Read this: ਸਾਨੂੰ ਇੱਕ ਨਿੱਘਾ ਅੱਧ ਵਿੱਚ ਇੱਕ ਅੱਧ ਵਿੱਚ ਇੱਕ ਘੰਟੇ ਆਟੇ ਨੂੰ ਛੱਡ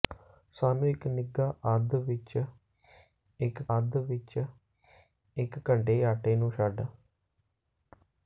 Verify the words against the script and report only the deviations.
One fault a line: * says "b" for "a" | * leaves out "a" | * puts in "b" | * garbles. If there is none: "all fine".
all fine